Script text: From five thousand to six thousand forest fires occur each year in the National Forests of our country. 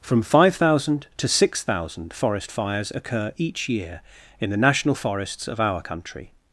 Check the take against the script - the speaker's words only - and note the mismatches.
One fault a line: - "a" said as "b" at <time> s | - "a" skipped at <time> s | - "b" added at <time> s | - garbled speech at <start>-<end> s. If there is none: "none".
none